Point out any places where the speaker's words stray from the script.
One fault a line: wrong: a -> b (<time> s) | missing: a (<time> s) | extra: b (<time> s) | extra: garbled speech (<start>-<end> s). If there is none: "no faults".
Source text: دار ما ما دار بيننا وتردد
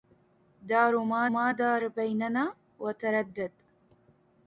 no faults